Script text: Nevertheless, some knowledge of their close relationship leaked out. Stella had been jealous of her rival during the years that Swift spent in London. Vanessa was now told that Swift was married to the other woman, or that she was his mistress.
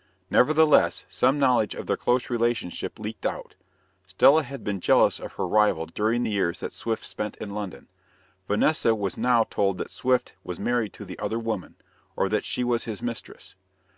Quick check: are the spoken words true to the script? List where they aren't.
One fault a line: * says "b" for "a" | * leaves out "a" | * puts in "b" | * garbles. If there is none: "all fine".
all fine